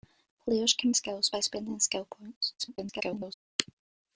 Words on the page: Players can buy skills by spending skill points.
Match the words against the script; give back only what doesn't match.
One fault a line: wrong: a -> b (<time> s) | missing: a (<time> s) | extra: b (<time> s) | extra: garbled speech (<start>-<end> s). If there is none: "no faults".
missing: buy (0.9 s)
extra: garbled speech (2.6-3.3 s)